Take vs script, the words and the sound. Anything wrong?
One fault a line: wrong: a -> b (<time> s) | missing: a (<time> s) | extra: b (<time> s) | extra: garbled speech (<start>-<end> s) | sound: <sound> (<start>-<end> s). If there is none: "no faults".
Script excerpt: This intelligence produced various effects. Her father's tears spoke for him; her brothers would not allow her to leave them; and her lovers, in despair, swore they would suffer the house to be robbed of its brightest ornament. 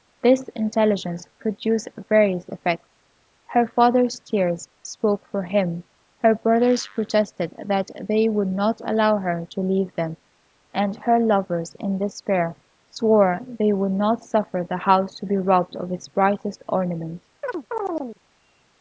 extra: protested that they (6.9 s)
extra: not (13.9 s)
sound: chirp (17.4-18.2 s)